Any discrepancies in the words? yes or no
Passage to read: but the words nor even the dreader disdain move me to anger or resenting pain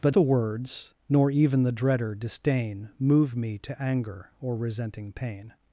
no